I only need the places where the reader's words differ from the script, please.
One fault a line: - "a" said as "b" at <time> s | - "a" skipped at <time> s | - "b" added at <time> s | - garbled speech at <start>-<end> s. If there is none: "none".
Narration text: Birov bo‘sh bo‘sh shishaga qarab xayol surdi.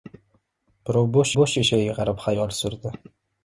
none